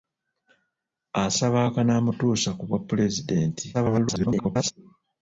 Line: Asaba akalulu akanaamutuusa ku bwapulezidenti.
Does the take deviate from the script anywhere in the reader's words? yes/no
yes